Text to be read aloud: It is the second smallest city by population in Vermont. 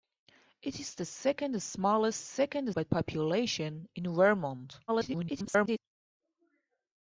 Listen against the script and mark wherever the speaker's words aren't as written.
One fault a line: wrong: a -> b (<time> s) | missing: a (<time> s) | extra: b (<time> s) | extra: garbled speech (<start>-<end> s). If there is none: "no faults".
wrong: city -> second (2.2 s)
extra: garbled speech (4.9-5.8 s)